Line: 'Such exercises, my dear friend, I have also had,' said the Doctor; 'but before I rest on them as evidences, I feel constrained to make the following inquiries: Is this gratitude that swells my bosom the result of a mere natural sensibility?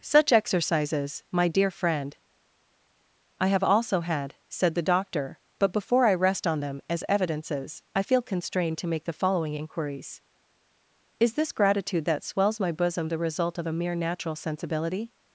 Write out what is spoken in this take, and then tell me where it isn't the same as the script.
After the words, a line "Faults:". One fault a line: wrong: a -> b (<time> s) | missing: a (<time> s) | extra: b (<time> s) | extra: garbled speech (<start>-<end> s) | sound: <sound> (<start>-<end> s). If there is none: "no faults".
'Such exercises, my dear friend, I have also had,' said the Doctor; 'but before I rest on them as evidences, I feel constrained to make the following inquiries: Is this gratitude that swells my bosom the result of a mere natural sensibility?
Faults:
no faults